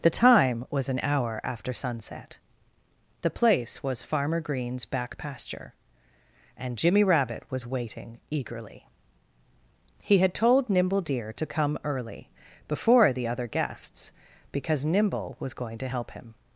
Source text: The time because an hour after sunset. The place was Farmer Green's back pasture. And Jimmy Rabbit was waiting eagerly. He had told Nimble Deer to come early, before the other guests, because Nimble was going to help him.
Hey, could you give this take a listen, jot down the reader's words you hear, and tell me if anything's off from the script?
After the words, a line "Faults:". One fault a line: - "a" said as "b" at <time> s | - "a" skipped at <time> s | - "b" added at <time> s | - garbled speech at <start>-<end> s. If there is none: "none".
The time was an hour after sunset. The place was Farmer Green's back pasture. And Jimmy Rabbit was waiting eagerly. He had told Nimble Deer to come early, before the other guests, because Nimble was going to help him.
Faults:
- "because" said as "was" at 0.7 s